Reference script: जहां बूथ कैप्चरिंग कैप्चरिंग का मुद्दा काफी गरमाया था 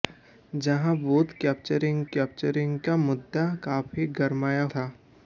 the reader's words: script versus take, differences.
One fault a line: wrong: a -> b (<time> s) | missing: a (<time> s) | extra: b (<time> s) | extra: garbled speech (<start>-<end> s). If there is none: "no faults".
no faults